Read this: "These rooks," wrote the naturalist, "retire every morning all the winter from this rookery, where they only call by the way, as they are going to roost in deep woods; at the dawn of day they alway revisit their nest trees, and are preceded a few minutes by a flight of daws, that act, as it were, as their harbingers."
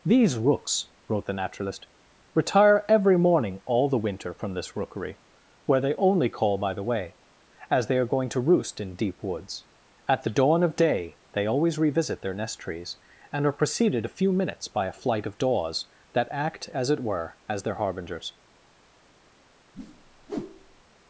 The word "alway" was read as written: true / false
false